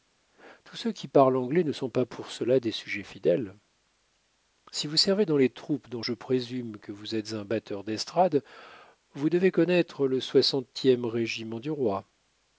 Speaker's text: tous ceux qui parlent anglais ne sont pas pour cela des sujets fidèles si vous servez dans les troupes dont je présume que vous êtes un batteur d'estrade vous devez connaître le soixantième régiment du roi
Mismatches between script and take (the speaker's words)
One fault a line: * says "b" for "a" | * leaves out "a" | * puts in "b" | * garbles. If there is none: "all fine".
all fine